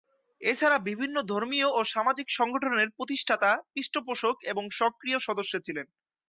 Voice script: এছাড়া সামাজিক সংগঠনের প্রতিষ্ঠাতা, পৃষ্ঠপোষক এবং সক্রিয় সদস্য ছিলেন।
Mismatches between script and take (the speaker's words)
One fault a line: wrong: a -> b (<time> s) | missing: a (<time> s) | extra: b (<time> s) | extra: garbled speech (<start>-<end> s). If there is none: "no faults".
extra: বিভিন্ন ধর্মীয় ও (0.9 s)